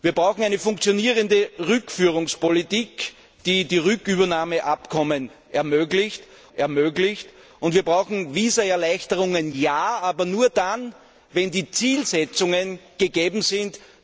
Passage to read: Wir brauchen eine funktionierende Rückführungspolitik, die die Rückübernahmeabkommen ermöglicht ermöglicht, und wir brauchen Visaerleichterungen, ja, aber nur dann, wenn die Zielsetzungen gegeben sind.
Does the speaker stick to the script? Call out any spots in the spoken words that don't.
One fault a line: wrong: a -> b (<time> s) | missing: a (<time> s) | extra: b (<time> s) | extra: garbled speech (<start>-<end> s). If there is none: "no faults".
no faults